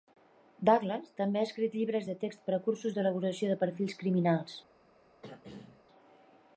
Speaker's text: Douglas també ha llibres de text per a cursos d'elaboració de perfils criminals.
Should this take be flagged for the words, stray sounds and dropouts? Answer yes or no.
yes